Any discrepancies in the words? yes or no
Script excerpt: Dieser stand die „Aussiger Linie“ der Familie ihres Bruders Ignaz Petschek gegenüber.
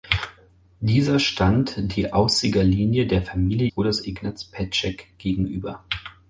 yes